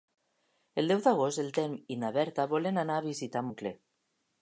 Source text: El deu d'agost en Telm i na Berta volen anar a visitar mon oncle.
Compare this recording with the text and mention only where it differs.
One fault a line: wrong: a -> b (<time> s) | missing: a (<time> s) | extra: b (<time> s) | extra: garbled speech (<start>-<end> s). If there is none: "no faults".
missing: mon (3.5 s)